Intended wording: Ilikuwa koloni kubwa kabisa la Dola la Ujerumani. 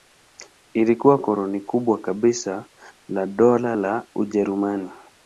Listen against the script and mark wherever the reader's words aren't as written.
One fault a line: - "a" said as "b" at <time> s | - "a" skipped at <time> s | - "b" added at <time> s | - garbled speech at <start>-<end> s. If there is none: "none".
none